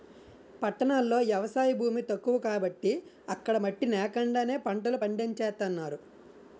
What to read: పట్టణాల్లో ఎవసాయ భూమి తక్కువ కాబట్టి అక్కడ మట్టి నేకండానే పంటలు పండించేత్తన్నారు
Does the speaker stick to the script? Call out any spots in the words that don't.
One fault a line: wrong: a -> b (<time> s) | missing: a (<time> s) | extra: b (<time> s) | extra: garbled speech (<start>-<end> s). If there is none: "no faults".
no faults